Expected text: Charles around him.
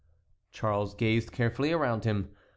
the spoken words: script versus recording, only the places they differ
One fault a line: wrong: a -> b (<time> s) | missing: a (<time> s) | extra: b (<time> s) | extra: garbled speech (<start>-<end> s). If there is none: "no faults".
extra: gazed carefully (0.9 s)